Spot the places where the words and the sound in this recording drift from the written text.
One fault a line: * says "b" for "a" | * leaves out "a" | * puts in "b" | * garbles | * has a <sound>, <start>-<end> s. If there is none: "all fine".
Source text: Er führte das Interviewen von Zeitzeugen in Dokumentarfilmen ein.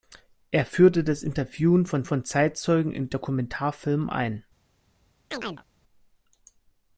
* puts in "von"
* has a chirp, 5.3-5.6 s